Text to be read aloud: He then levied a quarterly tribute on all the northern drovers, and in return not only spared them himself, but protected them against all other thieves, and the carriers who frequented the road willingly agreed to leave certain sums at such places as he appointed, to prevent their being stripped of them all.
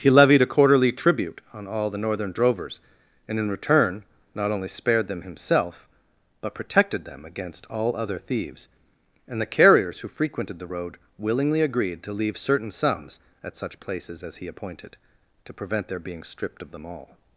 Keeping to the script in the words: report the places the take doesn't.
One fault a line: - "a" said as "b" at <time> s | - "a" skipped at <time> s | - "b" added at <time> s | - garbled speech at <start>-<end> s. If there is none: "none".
- "then" skipped at 0.1 s